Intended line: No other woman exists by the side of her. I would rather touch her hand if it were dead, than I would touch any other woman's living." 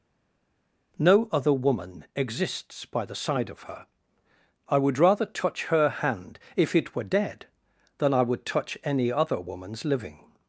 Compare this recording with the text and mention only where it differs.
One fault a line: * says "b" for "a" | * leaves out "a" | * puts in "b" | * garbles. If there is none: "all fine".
all fine